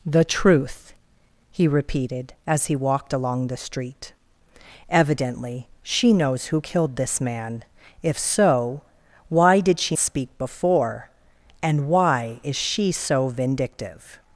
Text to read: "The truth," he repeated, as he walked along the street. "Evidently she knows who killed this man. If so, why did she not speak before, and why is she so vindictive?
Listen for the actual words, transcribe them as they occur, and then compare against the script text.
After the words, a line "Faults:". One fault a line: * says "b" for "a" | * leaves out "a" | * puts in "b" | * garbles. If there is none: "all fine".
"The truth," he repeated, as he walked along the street. "Evidently she knows who killed this man. If so, why did she speak before, and why is she so vindictive?
Faults:
* leaves out "not"